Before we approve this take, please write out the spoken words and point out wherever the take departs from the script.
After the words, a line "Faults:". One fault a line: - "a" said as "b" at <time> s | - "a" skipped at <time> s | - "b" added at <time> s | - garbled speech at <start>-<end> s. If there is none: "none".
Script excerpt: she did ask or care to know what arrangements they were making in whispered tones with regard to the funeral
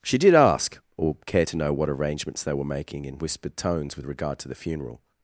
she did ask or care to know what arrangements they were making in whispered tones with regard to the funeral
Faults:
none